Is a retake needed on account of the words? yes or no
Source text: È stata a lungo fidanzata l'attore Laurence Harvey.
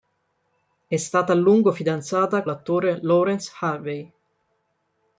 no